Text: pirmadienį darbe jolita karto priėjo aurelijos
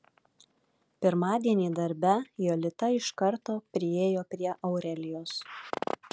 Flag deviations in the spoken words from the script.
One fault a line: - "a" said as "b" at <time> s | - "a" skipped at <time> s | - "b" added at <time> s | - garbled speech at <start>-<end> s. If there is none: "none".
- "iš" added at 3.0 s
- "prie" added at 4.3 s